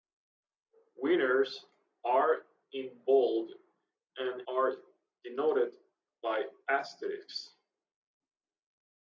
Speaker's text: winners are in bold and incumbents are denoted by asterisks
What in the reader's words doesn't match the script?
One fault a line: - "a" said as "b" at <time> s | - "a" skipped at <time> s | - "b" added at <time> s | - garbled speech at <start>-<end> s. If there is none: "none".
- "incumbents" skipped at 4.4 s